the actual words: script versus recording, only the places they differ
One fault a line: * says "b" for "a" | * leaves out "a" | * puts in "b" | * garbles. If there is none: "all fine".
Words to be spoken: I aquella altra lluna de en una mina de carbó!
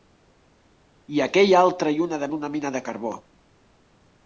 all fine